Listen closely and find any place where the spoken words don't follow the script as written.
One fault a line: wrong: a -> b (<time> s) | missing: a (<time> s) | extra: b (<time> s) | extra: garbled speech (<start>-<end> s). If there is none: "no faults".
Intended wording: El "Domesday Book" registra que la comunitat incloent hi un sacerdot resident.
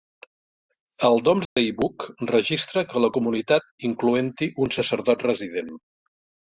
no faults